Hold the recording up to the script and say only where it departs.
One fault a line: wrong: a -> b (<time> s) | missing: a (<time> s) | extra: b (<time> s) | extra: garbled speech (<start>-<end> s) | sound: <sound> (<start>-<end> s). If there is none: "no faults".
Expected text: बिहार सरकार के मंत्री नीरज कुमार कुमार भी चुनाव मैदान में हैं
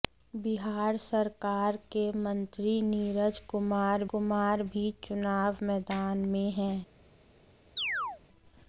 sound: chirp (7.8-8.2 s)